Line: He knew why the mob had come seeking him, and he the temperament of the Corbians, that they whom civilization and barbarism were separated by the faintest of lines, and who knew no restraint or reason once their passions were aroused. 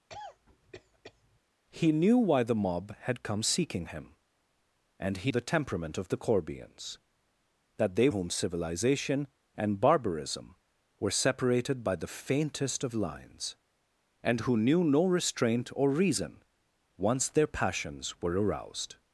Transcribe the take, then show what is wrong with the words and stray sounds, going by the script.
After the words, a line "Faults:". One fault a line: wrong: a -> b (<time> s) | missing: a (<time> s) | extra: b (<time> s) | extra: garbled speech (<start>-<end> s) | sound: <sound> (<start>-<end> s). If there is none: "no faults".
He knew why the mob had come seeking him, and he the temperament of the Corbians, that they whom civilization and barbarism were separated by the faintest of lines, and who knew no restraint or reason once their passions were aroused.
Faults:
sound: cough (0.1-1.4 s)